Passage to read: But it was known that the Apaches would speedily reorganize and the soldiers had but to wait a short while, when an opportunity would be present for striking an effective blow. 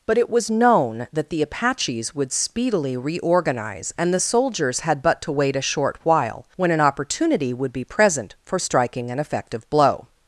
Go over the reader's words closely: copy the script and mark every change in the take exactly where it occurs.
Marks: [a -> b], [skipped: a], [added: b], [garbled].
But it was known that the Apaches would speedily reorganize and the soldiers had but to wait a short while, when an opportunity would be present for striking an effective blow.